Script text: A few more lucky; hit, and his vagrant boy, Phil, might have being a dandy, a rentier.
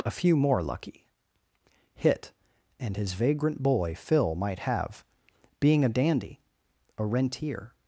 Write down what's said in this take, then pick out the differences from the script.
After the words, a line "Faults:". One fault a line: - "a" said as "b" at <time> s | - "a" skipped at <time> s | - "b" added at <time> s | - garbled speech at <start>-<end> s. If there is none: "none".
A few more lucky; hit, and his vagrant boy, Phil, might have being a dandy, a rentier.
Faults:
none